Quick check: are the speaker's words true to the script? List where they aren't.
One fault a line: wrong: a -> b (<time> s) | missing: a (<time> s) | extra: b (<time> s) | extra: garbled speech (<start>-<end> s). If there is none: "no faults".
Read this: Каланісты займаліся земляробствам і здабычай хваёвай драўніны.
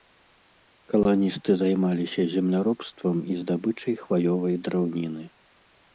no faults